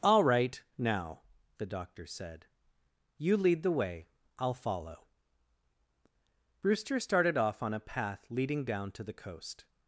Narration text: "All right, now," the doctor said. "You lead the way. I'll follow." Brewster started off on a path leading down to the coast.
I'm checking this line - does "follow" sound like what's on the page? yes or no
yes